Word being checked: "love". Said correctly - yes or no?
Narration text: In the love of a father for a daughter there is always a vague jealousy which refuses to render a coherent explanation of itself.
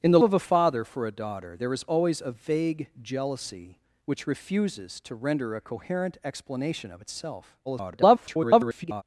no